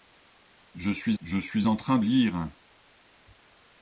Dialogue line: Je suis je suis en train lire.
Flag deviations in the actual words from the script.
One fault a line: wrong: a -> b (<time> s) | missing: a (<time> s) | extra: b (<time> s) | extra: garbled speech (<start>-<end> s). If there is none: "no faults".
no faults